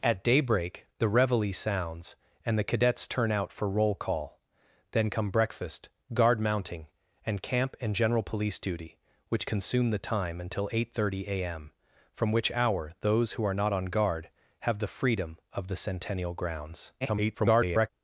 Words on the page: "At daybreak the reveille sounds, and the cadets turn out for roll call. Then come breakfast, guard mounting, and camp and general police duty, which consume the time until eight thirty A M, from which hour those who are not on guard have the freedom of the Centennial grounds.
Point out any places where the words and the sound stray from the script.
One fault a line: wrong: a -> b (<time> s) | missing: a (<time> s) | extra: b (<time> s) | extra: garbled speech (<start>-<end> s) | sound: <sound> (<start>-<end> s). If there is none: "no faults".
extra: garbled speech (17.0-17.9 s)